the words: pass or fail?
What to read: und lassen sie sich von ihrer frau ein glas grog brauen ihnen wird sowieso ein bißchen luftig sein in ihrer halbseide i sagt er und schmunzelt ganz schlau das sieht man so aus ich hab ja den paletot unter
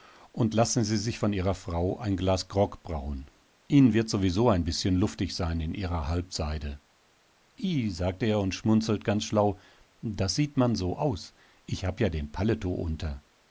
pass